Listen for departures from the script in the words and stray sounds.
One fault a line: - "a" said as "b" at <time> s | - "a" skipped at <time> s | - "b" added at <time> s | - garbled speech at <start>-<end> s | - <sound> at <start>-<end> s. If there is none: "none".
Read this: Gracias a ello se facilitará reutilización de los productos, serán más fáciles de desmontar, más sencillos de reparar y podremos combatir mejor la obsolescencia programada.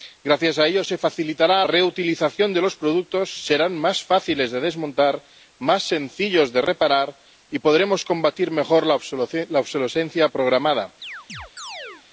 - chirp at 11.0-12.1 s